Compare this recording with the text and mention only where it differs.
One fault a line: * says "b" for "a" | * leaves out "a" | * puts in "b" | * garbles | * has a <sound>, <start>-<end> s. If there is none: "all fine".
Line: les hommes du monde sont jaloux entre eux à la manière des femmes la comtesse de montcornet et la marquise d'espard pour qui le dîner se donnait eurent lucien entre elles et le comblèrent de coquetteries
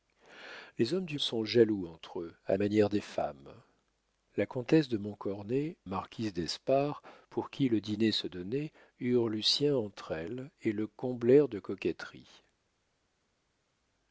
* leaves out "monde"
* leaves out "la"
* leaves out "et la"